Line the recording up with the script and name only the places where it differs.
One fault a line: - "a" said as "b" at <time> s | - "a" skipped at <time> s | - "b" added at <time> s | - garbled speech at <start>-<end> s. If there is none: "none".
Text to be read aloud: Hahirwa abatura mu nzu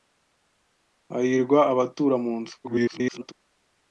- garbled speech at 2.6-3.3 s